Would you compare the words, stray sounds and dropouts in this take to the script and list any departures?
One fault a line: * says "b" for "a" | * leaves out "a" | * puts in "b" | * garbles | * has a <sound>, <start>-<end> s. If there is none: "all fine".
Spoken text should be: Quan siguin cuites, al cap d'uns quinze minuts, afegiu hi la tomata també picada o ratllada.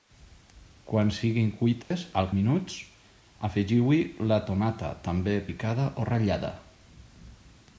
* has a dropout, 1.8-1.9 s
* leaves out "cap d'uns quinze"